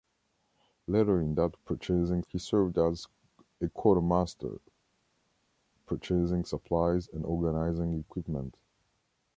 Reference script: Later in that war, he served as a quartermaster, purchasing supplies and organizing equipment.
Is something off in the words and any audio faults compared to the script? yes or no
yes